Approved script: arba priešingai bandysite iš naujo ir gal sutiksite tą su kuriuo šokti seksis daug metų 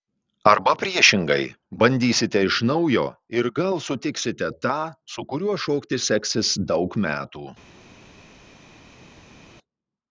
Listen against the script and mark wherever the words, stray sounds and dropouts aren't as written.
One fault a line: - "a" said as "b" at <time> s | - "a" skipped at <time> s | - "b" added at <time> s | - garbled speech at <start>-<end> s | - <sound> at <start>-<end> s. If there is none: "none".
none